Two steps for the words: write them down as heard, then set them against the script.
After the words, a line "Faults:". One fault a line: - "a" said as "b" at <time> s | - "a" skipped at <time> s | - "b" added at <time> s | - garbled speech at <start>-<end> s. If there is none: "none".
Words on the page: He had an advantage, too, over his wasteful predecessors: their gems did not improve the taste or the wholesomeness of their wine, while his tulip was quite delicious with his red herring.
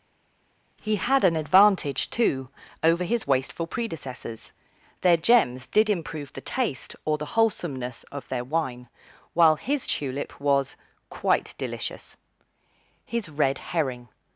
He had an advantage, too, over his wasteful predecessors: their gems did improve the taste or the wholesomeness of their wine, while his tulip was quite delicious his red herring.
Faults:
- "not" skipped at 5.9 s
- "with" skipped at 12.2 s